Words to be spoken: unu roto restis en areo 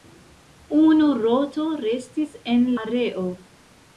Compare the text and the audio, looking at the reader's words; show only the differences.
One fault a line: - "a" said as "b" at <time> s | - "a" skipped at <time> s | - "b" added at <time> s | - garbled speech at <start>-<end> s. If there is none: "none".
none